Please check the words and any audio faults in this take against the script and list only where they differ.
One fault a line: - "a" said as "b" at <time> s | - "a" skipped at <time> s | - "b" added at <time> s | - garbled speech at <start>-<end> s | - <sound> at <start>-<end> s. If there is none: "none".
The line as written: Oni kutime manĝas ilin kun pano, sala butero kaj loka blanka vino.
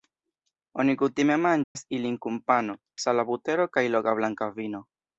- dropout at 1.6-1.8 s